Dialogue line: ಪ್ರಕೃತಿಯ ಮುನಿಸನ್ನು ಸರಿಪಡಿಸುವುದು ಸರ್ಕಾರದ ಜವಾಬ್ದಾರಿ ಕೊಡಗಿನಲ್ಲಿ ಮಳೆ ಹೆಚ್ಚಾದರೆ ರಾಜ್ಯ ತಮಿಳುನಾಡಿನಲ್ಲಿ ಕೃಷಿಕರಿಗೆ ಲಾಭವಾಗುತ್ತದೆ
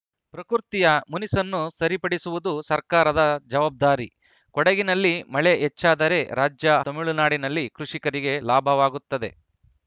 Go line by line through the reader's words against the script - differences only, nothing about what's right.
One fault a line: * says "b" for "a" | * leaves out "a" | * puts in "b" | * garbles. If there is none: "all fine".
all fine